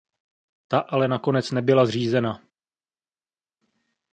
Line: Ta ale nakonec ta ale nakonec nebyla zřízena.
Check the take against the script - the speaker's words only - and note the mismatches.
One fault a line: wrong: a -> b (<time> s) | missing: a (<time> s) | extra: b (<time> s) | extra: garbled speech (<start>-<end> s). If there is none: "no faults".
missing: ta ale nakonec (1.5 s)